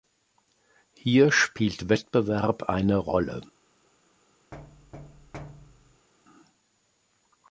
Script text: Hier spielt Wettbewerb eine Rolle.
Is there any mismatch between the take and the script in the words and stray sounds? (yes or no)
yes